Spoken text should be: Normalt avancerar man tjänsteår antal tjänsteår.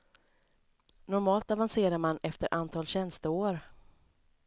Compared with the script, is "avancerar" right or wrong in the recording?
right